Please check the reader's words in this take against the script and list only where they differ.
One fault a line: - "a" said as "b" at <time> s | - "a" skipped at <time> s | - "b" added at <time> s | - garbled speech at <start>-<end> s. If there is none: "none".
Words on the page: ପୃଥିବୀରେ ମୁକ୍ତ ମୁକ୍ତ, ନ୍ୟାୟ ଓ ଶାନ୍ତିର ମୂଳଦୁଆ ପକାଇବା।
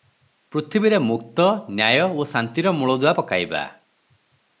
- "ମୁକ୍ତ" skipped at 1.4 s